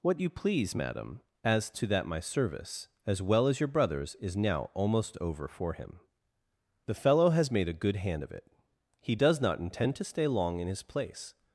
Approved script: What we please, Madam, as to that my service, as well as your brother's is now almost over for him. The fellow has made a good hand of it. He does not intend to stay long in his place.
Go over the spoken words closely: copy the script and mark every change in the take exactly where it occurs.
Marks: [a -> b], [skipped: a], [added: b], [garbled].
What [we -> you] please, Madam, as to that my service, as well as your brother's is now almost over for him. The fellow has made a good hand of it. He does not intend to stay long in his place.